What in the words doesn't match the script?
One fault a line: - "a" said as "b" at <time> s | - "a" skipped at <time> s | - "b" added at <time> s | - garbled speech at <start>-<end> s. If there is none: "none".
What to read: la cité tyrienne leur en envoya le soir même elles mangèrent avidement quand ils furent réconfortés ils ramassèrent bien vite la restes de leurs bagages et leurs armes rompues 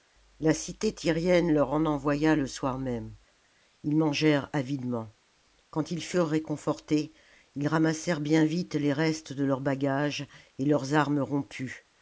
- "elles" said as "ils" at 3.8 s
- "la" said as "les" at 8.8 s